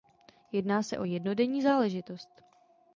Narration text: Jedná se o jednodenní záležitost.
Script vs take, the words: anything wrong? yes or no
no